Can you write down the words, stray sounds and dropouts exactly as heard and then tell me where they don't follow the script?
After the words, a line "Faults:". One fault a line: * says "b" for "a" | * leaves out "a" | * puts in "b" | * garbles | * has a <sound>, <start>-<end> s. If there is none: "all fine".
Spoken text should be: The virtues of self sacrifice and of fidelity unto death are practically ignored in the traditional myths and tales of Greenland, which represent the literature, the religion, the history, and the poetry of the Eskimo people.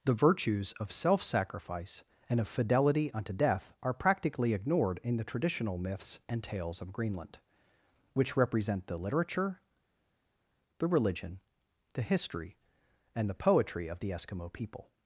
The virtues of self sacrifice and of fidelity unto death are practically ignored in the traditional myths and tales of Greenland, which represent the literature, the religion, the history, and the poetry of the Eskimo people.
Faults:
all fine